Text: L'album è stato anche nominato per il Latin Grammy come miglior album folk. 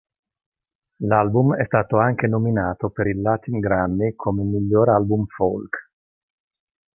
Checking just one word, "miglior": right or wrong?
right